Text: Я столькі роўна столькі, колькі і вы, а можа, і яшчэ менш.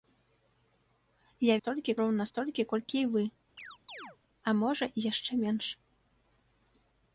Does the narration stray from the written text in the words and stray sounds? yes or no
yes